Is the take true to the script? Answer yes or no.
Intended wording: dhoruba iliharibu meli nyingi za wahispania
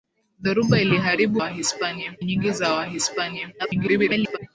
no